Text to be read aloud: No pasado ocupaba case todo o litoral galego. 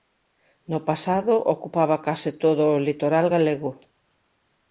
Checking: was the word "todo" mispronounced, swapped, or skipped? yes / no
no